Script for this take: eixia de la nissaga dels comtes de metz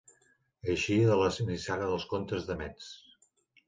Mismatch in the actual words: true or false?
false